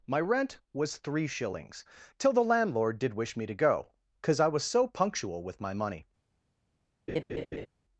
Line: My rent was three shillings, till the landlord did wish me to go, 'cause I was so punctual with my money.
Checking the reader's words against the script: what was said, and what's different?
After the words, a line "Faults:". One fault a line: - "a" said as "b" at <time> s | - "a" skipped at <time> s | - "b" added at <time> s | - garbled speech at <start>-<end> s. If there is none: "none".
My rent was three shillings, till the landlord did wish me to go, 'cause I was so punctual with my money.
Faults:
none